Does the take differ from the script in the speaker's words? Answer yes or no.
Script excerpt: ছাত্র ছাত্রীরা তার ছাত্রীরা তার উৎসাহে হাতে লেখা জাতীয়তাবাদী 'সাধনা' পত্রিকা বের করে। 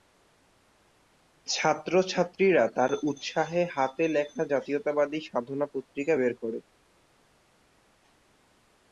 yes